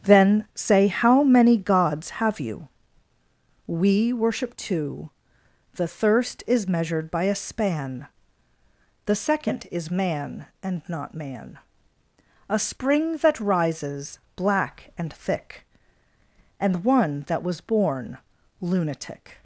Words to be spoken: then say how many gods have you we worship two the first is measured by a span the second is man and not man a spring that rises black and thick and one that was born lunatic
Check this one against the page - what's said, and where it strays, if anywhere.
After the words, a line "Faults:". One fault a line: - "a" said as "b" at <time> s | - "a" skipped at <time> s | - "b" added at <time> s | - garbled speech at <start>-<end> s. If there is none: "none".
then say how many gods have you we worship two the thirst is measured by a span the second is man and not man a spring that rises black and thick and one that was born lunatic
Faults:
- "first" said as "thirst" at 5.9 s